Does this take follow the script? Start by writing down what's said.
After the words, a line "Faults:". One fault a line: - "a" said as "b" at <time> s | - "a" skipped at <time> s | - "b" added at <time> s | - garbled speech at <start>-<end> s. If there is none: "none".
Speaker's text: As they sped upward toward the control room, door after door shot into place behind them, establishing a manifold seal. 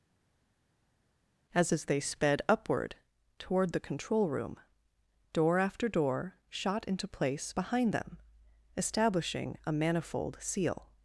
As as they sped upward toward the control room, door after door shot into place behind them, establishing a manifold seal.
Faults:
- "as" added at 1.7 s